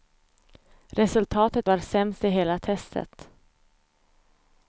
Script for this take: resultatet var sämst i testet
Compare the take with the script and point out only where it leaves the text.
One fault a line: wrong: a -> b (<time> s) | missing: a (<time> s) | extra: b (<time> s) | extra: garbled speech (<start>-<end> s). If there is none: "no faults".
extra: hela (2.3 s)